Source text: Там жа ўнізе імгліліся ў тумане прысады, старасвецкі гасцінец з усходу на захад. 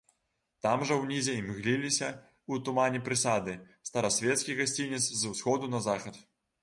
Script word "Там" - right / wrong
right